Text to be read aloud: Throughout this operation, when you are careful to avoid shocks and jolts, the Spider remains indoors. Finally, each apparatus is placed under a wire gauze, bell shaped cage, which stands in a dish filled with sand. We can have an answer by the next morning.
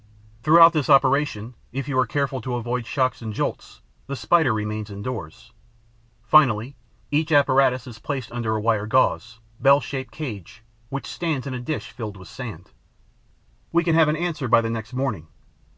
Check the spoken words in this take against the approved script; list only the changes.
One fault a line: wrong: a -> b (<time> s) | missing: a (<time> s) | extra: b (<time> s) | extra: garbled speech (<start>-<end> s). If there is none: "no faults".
wrong: when -> if (1.7 s)